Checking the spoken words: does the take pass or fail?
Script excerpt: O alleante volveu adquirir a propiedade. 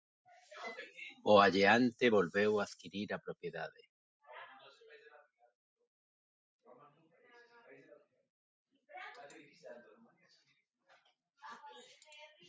pass